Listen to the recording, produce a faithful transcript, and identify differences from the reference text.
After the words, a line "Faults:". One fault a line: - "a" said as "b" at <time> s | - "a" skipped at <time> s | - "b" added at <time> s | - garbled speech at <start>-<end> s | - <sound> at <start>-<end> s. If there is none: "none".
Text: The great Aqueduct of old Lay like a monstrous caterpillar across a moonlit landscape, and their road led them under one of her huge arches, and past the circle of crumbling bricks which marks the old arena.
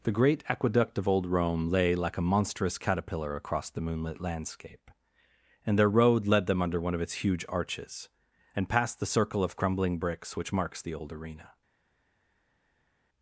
The great Aqueduct of old Rome lay like a monstrous caterpillar across the moonlit landscape, and their road led them under one of its huge arches, and past the circle of crumbling bricks which marks the old arena.
Faults:
- "Rome" added at 1.3 s
- "a" said as "the" at 3.7 s
- "her" said as "its" at 7.0 s